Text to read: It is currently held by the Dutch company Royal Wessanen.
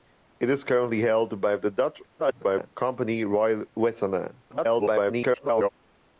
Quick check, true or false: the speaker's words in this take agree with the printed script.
false